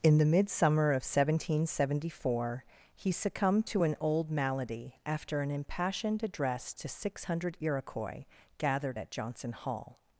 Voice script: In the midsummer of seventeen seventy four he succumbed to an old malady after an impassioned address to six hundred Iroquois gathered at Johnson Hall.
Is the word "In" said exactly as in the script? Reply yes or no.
yes